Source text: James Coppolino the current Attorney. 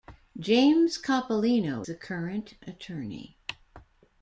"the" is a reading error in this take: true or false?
false